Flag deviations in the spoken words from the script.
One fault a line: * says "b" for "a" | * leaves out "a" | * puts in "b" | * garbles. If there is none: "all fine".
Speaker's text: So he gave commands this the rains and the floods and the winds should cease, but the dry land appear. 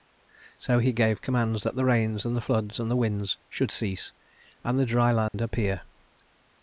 * says "that" for "this"
* says "and" for "but"